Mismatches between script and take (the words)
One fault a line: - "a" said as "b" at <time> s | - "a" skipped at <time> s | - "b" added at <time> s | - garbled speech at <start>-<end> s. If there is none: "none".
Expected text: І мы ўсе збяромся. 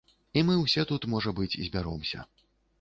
- "тут можа быць" added at 0.9 s